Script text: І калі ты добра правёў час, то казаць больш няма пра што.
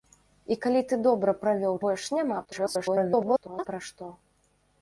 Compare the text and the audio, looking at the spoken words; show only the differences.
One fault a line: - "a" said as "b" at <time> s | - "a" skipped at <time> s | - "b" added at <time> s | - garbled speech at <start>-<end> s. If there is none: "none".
- "час то казаць" skipped at 1.8 s
- garbled speech at 2.4-3.7 s